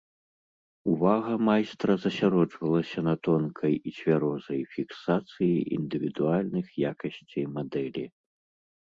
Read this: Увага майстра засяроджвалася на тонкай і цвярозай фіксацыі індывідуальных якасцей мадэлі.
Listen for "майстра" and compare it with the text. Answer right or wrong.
right